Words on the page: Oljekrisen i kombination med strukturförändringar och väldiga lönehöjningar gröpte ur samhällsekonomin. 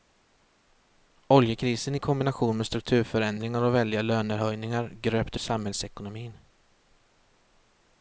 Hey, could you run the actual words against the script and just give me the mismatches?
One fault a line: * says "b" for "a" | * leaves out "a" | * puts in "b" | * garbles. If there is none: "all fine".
* leaves out "ur"